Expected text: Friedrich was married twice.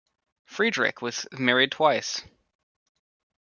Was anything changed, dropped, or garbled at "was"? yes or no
no